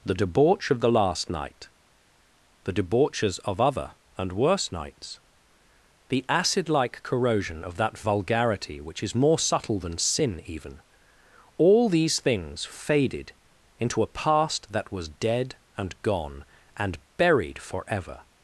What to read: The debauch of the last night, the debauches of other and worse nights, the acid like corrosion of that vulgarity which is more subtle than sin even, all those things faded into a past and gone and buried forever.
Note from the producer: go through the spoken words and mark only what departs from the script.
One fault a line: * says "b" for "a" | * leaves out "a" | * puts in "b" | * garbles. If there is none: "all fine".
* says "these" for "those"
* puts in "that was dead"